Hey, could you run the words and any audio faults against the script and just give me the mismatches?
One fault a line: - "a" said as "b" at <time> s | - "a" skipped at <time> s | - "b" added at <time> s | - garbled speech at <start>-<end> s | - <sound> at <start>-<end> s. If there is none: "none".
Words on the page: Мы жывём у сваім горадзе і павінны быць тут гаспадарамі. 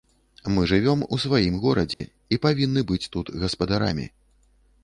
- dropout at 1.9-2.0 s